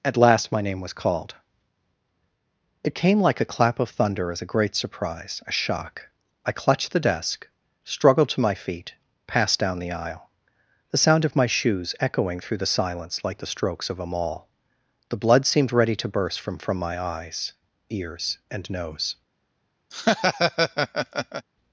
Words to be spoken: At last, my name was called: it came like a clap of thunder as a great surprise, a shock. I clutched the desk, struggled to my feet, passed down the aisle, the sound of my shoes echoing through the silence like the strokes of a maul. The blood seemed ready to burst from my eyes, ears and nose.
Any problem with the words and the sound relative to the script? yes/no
yes